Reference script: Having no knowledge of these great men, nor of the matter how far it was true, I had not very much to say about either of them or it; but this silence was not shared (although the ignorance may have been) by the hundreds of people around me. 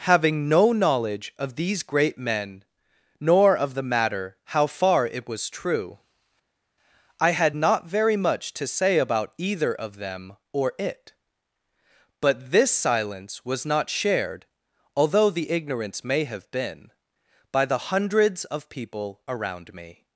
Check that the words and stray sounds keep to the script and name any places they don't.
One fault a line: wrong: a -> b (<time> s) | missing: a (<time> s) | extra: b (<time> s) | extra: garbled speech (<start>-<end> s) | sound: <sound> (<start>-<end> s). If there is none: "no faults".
no faults